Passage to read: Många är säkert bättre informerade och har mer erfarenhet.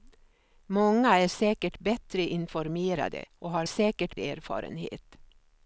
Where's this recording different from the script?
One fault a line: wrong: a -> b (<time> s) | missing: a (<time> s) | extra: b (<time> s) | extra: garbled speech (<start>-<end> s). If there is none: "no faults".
wrong: mer -> säkert (3.6 s)